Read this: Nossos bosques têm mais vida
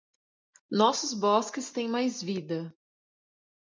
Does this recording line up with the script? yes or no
yes